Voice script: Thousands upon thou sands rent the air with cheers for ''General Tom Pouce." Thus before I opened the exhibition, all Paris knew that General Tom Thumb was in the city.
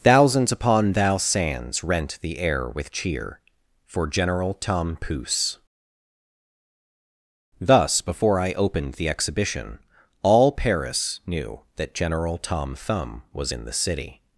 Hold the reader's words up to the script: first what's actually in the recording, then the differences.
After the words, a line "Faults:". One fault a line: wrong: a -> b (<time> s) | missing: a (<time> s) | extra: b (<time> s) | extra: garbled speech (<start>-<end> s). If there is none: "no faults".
Thousands upon thou sands rent the air with cheer for ''General Tom Pouce." Thus before I opened the exhibition, all Paris knew that General Tom Thumb was in the city.
Faults:
wrong: cheers -> cheer (2.9 s)